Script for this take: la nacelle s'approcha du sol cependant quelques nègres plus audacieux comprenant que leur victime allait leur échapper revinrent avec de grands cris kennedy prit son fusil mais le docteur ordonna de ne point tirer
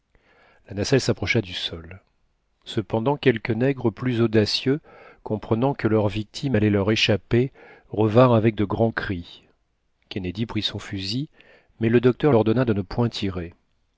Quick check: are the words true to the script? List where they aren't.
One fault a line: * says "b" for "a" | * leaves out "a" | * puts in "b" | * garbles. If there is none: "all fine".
all fine